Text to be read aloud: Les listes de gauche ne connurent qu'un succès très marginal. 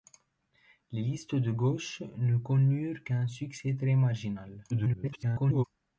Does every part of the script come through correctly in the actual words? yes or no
no